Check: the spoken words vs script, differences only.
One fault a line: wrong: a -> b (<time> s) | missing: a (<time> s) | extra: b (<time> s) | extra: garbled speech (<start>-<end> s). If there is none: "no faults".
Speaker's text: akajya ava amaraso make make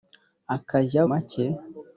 missing: ava amaraso make (1.0 s)